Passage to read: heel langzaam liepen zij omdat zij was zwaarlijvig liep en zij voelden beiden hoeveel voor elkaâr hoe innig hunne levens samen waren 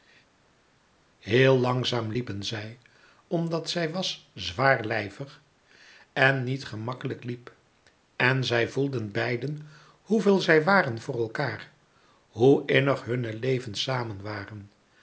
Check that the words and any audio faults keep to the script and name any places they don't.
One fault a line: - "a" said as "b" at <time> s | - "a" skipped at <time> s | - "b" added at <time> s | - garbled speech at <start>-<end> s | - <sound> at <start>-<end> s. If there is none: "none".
- "en niet gemakkelijk" added at 6.1 s
- "zij waren" added at 10.4 s